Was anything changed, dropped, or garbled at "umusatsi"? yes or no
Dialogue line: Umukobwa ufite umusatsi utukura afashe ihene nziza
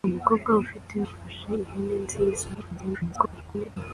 yes